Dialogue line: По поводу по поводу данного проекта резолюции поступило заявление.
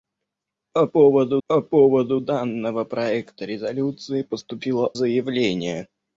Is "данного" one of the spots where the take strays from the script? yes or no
no